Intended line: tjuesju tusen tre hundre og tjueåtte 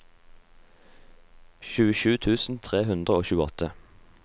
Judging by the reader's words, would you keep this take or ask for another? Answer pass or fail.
pass